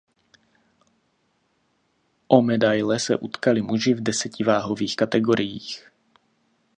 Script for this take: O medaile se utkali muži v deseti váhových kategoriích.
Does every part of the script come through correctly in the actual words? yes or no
yes